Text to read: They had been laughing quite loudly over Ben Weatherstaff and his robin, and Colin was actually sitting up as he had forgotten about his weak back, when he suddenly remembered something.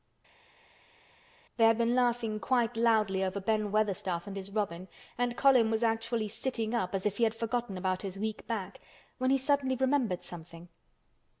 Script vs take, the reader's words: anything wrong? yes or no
yes